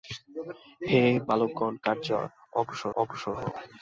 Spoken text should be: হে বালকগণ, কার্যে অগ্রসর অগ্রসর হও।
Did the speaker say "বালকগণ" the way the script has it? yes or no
yes